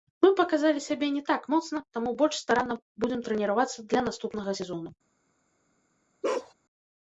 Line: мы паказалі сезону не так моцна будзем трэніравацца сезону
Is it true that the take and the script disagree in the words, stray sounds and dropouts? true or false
true